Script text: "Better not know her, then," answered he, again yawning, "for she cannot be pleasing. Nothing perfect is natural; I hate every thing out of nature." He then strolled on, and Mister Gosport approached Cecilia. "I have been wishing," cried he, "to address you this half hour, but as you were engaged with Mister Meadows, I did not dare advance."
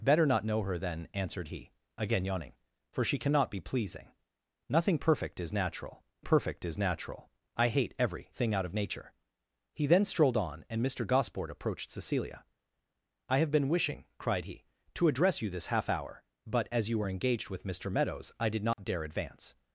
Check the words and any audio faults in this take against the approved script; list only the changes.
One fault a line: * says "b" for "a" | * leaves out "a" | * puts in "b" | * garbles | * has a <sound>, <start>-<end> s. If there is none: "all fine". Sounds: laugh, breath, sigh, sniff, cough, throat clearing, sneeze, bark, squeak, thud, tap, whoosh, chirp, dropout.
* puts in "perfect is natural"
* has a dropout, 18.7-18.8 s